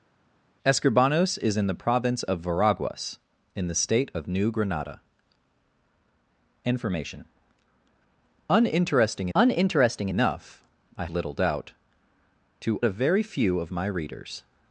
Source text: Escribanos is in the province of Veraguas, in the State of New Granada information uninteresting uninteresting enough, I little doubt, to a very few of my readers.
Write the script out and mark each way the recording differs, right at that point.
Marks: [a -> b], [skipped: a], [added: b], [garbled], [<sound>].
Escribanos is in the province of Veraguas, in the State of New Granada information uninteresting uninteresting enough, I little doubt, to a very few of my readers.